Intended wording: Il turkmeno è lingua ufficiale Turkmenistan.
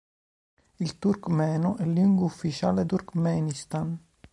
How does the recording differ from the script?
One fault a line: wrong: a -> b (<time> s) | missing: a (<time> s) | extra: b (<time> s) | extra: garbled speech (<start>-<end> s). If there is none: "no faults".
no faults